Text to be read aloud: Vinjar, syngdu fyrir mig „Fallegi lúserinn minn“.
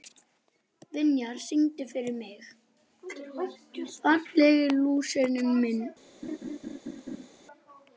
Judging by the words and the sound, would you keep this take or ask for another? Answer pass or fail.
fail